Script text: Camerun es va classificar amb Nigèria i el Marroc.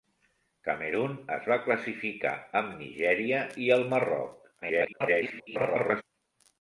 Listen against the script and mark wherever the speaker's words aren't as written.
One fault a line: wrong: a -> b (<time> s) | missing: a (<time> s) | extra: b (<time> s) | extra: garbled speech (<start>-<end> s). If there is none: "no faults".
extra: garbled speech (4.6-6.0 s)